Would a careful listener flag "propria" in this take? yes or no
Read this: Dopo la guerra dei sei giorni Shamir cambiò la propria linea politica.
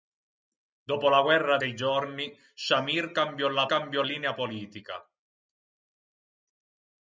yes